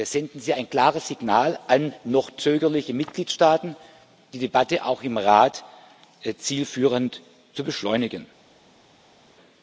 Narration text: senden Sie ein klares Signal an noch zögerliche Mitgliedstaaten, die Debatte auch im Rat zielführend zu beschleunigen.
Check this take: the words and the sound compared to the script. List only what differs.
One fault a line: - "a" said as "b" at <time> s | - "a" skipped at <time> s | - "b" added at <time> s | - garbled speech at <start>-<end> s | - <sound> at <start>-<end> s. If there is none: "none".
none